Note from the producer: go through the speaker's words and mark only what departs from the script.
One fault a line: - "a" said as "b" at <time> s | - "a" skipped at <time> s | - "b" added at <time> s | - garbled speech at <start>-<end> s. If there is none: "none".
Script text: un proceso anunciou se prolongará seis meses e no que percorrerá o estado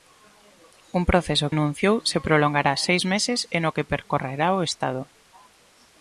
none